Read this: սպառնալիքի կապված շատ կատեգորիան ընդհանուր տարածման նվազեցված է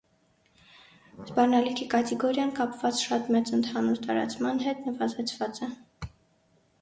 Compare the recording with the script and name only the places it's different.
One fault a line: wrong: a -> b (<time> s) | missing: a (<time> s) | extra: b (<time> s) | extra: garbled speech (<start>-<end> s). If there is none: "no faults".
extra: կատեգորիան (1.9 s)
wrong: կատեգորիան -> մեծ (3.4 s)
extra: հետ (4.7 s)